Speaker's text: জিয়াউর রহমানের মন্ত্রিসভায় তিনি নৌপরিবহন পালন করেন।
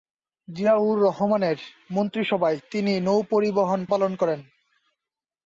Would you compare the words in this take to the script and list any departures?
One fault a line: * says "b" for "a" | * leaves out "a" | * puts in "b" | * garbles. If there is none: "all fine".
all fine